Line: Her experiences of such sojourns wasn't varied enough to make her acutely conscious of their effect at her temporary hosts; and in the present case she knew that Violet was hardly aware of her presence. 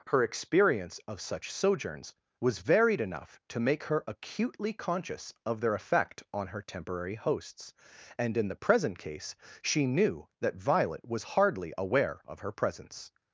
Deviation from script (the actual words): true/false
true